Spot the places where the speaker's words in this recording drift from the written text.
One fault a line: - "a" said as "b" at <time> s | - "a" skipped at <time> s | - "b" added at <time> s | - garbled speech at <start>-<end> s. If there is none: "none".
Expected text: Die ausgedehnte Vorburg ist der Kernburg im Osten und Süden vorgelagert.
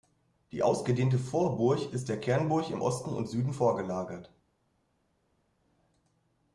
none